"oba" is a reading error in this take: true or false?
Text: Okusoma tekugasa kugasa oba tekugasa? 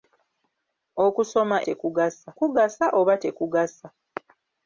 false